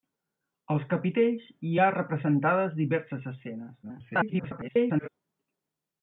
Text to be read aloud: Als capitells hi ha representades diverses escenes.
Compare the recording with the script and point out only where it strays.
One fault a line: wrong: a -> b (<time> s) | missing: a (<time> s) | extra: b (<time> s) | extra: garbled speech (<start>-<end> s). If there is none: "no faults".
extra: garbled speech (3.8-5.1 s)